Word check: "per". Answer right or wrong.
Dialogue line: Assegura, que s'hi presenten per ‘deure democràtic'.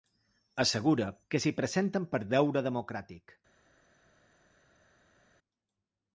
right